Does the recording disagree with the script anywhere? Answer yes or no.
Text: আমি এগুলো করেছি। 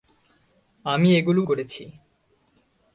no